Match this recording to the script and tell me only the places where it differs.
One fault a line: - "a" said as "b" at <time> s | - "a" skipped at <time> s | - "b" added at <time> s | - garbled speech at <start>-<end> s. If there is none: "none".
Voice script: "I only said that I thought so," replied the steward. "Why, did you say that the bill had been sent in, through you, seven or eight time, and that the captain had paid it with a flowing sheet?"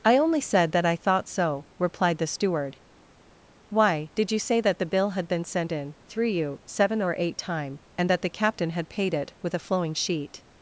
none